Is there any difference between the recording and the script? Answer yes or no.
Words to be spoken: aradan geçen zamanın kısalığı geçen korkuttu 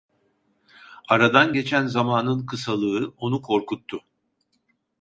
yes